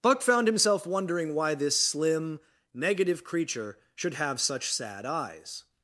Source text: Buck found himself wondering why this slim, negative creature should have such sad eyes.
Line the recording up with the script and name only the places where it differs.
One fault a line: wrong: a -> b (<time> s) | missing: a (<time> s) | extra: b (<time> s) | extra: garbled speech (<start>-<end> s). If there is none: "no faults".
no faults